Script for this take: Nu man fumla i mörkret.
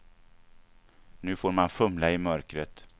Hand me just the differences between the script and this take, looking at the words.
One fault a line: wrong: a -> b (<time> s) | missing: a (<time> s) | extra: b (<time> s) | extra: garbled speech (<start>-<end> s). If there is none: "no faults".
extra: får (1.4 s)